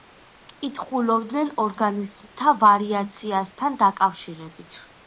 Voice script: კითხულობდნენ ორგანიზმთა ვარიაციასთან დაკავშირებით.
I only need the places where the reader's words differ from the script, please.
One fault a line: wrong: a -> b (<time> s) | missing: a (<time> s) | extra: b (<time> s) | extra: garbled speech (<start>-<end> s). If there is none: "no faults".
no faults